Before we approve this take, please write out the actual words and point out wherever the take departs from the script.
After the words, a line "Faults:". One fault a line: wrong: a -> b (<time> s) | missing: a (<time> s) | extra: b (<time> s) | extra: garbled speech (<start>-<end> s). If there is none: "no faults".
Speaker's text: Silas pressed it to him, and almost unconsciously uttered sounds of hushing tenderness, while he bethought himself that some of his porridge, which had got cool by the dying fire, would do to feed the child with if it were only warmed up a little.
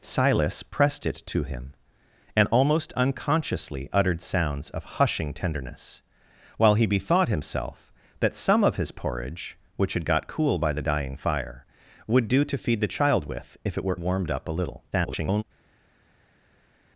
Silas pressed it to him, and almost unconsciously uttered sounds of hushing tenderness, while he bethought himself that some of his porridge, which had got cool by the dying fire, would do to feed the child with if it were warmed up a little. [garbled]
Faults:
missing: only (14.0 s)
extra: garbled speech (14.9-15.4 s)